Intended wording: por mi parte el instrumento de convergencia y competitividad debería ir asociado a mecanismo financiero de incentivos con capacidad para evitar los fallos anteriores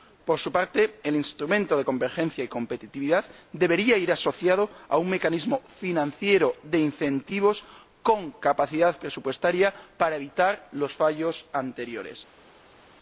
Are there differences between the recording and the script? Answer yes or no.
yes